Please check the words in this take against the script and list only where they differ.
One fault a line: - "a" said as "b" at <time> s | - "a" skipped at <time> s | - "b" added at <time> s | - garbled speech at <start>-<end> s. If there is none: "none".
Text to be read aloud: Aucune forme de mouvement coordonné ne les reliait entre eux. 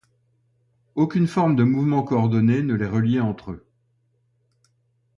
none